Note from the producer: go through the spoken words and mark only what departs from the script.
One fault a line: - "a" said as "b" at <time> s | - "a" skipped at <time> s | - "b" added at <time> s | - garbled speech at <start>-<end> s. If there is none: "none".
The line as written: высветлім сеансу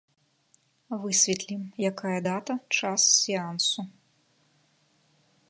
- "якая дата час" added at 1.9 s